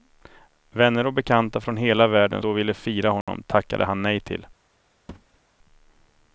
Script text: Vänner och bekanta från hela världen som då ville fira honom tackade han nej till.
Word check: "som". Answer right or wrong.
wrong